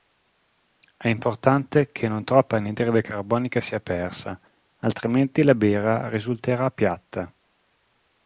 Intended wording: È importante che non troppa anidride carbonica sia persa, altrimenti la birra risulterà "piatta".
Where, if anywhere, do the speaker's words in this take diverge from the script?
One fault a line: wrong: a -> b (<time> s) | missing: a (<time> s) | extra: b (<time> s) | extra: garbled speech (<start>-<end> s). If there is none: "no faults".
no faults